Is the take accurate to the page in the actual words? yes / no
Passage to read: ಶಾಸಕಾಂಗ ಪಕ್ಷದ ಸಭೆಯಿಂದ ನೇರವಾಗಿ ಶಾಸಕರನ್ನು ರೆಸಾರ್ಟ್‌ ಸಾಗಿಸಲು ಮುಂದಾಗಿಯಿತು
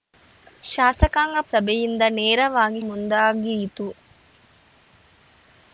no